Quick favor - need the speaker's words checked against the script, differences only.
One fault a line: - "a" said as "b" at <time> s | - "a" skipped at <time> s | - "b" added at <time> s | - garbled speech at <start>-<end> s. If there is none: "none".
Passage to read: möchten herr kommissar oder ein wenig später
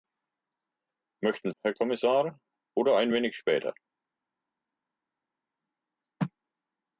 none